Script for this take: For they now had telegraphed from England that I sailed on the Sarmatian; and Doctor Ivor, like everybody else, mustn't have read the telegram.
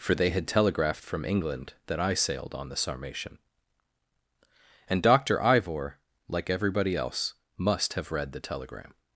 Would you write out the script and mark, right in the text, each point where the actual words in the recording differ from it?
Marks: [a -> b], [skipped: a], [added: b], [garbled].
For they [skipped: now] had telegraphed from England that I sailed on the Sarmatian; and Doctor Ivor, like everybody else, [mustn't -> must] have read the telegram.